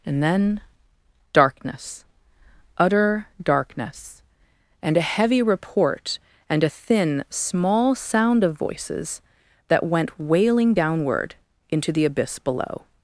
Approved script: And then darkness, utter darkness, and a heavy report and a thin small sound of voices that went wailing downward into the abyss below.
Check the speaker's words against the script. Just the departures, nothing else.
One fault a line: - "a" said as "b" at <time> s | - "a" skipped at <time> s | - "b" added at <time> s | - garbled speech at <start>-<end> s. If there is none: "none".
none